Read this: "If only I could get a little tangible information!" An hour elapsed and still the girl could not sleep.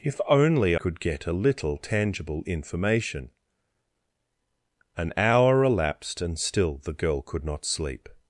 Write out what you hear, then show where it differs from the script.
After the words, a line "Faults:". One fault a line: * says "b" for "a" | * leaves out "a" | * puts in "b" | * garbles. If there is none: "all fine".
"If only could get a little tangible information!" An hour elapsed and still the girl could not sleep.
Faults:
* leaves out "I"